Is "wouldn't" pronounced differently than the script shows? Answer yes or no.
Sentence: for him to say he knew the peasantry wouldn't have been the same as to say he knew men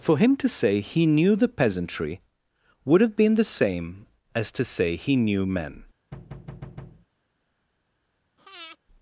yes